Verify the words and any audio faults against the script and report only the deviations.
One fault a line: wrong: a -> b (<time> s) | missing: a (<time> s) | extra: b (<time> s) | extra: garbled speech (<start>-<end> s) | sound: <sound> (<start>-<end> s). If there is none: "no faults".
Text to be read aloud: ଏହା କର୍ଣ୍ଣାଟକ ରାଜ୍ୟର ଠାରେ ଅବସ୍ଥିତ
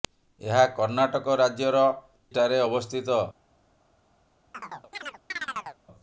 sound: chirp (4.5-5.8 s)